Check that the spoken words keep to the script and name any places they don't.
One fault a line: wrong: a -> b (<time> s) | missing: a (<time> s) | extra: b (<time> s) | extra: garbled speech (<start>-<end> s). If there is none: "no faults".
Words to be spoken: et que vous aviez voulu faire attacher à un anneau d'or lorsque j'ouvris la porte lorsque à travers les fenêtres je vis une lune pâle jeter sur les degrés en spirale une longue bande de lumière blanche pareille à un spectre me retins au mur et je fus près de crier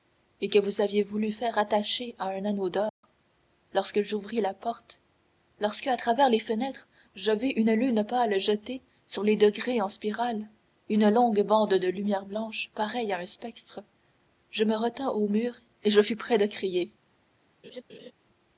extra: je (14.5 s)